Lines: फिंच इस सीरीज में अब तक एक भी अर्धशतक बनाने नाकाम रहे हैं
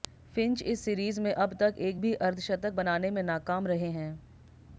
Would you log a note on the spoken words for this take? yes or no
yes